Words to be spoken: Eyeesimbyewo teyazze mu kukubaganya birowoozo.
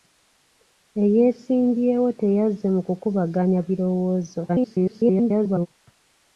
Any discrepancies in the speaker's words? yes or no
yes